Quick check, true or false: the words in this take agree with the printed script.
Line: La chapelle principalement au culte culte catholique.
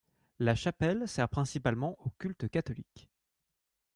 false